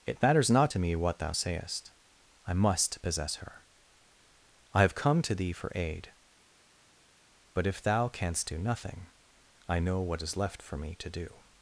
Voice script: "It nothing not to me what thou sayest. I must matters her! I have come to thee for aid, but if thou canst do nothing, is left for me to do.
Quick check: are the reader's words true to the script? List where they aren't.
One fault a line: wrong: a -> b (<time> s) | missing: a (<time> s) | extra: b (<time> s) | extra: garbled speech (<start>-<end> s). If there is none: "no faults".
wrong: nothing -> matters (0.2 s)
wrong: matters -> possess (3.0 s)
extra: I know what (9.7 s)